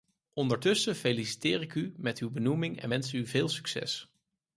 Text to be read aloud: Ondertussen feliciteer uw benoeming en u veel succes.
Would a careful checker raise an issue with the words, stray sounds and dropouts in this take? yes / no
yes